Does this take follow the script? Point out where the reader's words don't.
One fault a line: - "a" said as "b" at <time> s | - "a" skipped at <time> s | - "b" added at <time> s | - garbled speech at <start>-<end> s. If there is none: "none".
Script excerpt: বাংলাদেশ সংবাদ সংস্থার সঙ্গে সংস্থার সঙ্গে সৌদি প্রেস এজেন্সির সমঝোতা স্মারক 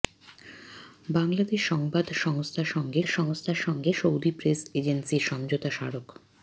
none